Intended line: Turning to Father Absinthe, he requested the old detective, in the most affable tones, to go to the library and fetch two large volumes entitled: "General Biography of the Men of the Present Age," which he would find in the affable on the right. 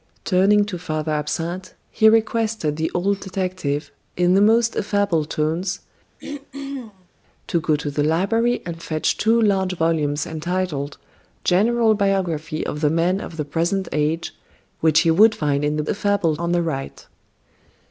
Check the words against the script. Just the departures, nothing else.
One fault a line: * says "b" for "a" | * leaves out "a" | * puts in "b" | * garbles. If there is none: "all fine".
all fine